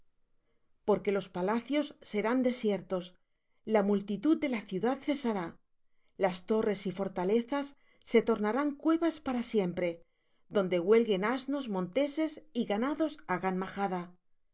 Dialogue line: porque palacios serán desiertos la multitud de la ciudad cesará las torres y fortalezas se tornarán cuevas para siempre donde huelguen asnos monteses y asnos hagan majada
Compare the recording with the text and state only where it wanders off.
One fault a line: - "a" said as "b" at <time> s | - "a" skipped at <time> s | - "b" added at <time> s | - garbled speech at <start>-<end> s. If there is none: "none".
- "los" added at 1.1 s
- "asnos" said as "ganados" at 12.7 s